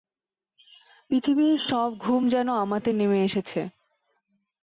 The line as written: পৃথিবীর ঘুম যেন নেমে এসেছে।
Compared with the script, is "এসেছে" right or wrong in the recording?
right